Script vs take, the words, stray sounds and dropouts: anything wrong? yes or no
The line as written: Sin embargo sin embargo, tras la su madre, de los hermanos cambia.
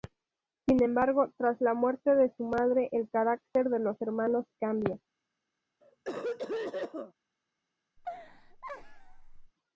yes